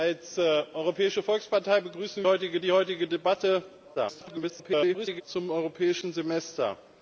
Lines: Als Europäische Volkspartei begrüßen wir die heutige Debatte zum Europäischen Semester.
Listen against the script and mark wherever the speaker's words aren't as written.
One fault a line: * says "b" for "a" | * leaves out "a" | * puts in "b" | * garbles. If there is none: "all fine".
* says "heutige" for "wir"
* garbles